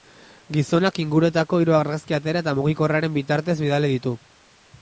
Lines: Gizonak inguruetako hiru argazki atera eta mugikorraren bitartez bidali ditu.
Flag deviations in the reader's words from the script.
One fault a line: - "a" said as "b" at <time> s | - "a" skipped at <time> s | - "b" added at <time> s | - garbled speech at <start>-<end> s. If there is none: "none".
none